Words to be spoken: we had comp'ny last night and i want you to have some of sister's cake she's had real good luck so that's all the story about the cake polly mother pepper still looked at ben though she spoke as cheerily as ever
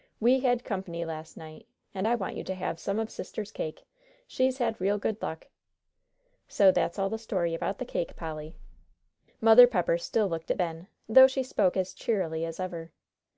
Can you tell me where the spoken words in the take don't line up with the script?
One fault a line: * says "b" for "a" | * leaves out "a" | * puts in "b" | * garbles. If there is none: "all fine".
all fine